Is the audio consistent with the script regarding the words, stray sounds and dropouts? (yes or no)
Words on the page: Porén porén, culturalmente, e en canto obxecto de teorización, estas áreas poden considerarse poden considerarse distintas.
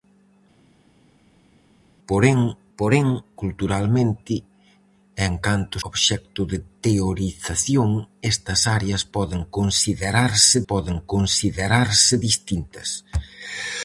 yes